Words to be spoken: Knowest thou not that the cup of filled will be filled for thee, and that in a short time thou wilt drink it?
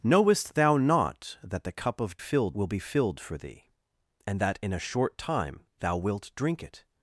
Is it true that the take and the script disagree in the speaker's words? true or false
false